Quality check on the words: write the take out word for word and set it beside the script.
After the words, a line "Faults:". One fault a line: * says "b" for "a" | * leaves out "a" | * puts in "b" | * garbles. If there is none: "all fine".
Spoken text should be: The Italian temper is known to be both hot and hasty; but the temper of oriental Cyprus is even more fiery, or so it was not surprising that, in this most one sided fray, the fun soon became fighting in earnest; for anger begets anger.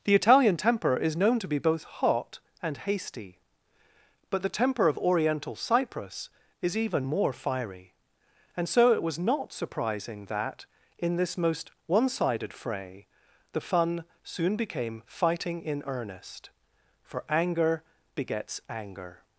The Italian temper is known to be both hot and hasty; but the temper of oriental Cyprus is even more fiery, and so it was not surprising that, in this most one sided fray, the fun soon became fighting in earnest; for anger begets anger.
Faults:
* says "and" for "or"